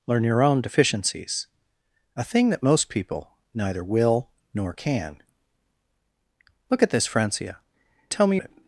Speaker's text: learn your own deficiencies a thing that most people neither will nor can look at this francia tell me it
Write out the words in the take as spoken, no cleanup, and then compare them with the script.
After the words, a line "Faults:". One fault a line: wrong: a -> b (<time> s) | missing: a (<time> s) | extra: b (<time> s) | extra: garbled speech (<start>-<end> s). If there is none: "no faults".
learn your own deficiencies a thing that most people neither will nor can look at this francia tell me it
Faults:
no faults